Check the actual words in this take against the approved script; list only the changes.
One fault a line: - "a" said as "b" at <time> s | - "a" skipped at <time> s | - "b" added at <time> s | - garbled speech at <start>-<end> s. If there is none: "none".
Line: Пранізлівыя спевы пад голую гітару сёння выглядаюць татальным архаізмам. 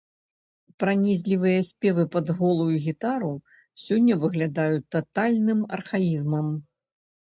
none